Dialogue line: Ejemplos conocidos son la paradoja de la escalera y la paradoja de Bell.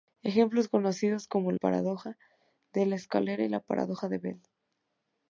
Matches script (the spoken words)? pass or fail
fail